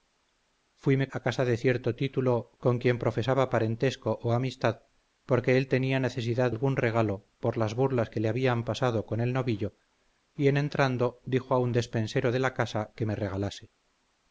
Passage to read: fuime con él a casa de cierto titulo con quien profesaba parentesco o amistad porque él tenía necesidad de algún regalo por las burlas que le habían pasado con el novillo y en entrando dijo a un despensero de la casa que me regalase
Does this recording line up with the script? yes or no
no